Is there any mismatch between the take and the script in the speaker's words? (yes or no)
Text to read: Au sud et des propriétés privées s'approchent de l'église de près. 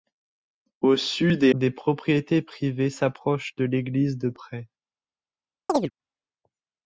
no